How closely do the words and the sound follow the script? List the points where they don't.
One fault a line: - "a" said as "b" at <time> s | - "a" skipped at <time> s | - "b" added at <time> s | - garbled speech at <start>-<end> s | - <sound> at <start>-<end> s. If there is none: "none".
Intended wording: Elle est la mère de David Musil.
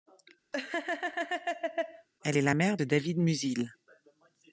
- laugh at 0.5-2.1 s